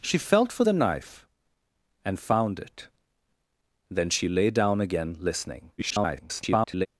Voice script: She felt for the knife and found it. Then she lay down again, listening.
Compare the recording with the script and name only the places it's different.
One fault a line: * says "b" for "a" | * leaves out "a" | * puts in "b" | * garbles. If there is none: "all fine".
* garbles